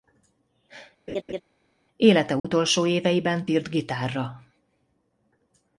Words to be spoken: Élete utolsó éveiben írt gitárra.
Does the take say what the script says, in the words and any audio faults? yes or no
no